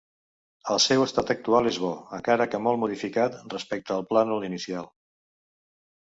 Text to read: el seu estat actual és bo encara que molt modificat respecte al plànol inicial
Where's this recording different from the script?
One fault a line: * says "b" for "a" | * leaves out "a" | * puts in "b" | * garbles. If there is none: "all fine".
all fine